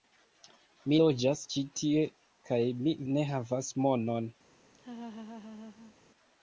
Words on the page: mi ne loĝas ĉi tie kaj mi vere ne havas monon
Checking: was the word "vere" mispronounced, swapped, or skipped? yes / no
yes